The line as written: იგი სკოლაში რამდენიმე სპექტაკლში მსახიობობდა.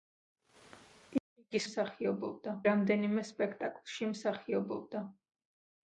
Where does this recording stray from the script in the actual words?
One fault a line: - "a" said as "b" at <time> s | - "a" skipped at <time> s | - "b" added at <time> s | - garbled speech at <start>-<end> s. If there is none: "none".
- "სკოლაში" said as "მსახიობობდა" at 1.6 s